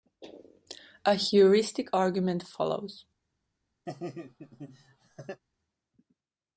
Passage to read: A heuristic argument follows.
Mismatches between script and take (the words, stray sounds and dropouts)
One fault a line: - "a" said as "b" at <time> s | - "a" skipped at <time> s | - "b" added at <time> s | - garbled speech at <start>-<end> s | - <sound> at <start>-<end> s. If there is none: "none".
- laugh at 3.9-5.4 s